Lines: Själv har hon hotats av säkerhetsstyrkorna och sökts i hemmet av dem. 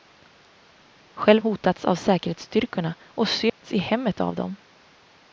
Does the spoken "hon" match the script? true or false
false